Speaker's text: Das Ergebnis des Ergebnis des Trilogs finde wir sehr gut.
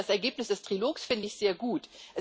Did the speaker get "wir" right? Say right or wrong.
wrong